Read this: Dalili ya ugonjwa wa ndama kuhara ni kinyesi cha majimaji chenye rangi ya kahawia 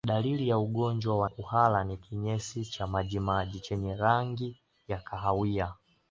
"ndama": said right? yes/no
no